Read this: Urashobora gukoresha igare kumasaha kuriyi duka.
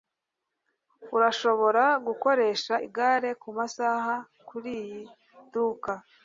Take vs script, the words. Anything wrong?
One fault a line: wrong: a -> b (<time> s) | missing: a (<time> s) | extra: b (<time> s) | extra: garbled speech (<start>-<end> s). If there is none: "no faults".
no faults